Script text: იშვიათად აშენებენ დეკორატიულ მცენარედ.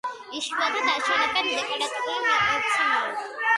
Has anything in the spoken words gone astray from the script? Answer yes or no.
no